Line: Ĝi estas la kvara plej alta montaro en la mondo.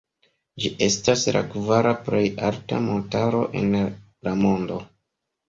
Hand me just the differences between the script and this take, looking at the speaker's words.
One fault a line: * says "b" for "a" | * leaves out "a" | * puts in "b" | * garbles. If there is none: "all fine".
all fine